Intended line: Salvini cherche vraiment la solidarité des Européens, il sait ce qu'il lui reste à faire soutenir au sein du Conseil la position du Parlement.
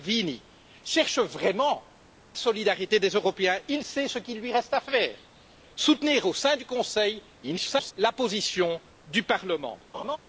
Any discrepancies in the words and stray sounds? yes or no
yes